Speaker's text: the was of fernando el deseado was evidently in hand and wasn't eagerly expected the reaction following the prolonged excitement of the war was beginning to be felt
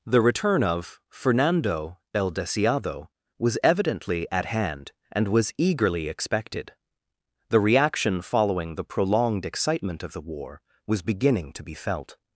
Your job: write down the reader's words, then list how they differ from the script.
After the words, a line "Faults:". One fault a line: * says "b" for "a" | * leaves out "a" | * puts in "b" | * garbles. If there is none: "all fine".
the return of fernando el deseado was evidently at hand and was eagerly expected the reaction following the prolonged excitement of the war was beginning to be felt
Faults:
* says "return" for "was"
* says "at" for "in"
* says "was" for "wasn't"